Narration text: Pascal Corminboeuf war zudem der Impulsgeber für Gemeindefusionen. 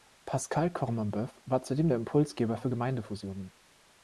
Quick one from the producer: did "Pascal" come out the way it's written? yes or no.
yes